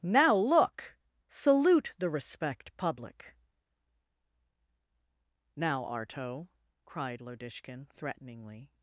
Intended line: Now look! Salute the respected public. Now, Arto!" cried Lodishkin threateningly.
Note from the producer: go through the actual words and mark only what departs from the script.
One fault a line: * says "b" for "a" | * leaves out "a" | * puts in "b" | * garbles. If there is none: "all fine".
* says "respect" for "respected"